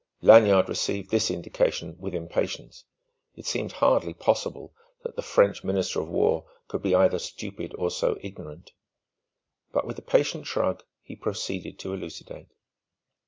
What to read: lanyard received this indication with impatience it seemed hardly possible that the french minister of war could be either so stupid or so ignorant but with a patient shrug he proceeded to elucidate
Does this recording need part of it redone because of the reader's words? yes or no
yes